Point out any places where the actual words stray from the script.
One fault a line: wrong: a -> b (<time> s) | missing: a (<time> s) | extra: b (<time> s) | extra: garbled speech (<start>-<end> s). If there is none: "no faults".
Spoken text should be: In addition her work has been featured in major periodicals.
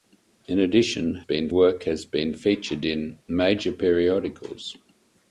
wrong: her -> been (1.2 s)